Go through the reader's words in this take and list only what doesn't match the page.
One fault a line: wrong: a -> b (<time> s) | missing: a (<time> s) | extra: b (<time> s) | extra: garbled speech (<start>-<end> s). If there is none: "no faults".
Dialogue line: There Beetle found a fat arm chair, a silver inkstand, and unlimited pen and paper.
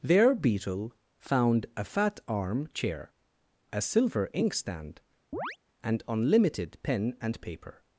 no faults